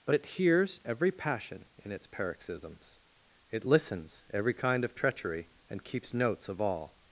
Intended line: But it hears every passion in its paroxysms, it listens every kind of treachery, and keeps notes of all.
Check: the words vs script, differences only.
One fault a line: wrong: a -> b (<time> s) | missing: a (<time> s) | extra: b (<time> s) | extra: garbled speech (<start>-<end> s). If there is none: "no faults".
no faults